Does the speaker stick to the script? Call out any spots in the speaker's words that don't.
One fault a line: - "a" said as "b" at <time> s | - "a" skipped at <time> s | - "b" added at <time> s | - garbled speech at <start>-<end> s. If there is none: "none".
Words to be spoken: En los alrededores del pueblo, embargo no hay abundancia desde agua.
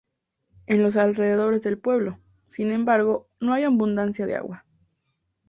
- "sin" added at 2.5 s
- "desde" said as "de" at 4.2 s